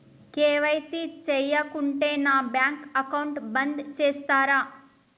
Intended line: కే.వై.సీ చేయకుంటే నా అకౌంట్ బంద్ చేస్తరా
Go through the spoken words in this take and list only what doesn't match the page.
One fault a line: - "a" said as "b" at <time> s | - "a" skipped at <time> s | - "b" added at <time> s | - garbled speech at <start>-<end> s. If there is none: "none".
- "బ్యాంక్" added at 2.5 s